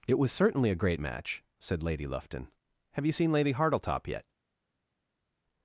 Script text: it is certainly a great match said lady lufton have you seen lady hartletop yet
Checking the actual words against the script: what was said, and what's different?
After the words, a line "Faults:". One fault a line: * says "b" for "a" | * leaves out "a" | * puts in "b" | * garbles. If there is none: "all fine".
it was certainly a great match said lady lufton have you seen lady hartletop yet
Faults:
* says "was" for "is"